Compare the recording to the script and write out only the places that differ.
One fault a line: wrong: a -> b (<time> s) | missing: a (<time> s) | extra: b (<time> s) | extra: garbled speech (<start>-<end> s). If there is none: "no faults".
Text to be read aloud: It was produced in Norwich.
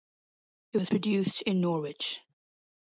no faults